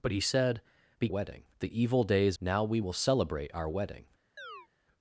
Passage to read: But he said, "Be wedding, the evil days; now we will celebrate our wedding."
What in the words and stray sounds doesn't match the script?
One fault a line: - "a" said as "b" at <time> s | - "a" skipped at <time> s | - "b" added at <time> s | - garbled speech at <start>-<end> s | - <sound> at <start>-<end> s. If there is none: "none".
- chirp at 4.4-4.7 s